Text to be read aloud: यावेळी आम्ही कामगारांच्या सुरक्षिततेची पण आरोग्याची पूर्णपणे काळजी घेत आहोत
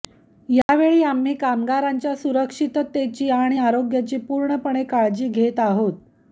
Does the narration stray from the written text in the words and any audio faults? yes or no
yes